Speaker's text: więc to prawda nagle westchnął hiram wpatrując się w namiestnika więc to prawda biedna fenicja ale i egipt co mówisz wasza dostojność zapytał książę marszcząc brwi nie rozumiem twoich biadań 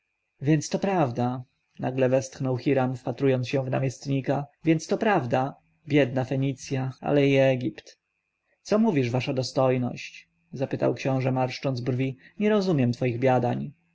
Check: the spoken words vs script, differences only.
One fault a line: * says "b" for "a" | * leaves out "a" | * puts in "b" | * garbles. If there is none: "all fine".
all fine